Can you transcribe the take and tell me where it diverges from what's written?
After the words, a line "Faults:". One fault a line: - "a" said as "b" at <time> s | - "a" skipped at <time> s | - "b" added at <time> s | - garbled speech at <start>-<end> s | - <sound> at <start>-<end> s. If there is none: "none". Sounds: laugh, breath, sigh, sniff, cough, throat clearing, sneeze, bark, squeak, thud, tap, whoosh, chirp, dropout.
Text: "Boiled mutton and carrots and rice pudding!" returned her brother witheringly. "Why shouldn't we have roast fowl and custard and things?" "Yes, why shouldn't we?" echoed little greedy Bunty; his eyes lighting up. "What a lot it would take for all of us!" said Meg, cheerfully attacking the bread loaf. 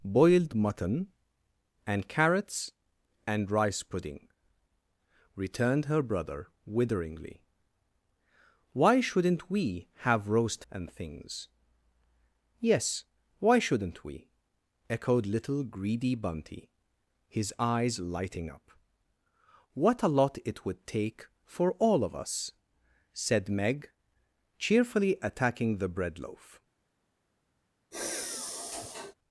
"Boiled mutton and carrots and rice pudding!" returned her brother witheringly. "Why shouldn't we have roast and things?" "Yes, why shouldn't we?" echoed little greedy Bunty; his eyes lighting up. "What a lot it would take for all of us!" said Meg, cheerfully attacking the bread loaf.
Faults:
- "fowl and custard" skipped at 10.7 s
- sigh at 27.9-29.1 s